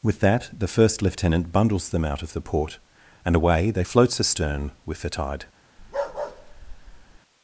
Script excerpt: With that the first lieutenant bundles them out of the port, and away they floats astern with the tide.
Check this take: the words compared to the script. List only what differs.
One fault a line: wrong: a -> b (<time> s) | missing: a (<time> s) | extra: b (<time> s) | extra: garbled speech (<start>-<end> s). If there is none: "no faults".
no faults